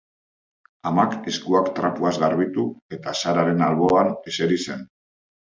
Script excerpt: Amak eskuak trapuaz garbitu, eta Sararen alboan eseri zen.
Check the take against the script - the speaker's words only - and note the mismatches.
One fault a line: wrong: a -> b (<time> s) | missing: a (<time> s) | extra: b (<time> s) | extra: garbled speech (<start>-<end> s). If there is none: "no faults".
no faults